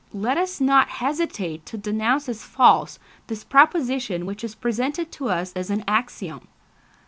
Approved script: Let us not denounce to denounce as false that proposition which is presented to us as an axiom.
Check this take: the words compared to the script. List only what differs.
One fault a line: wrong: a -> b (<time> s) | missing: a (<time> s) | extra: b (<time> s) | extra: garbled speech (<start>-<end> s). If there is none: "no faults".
wrong: denounce -> hesitate (0.9 s)
wrong: that -> this (3.3 s)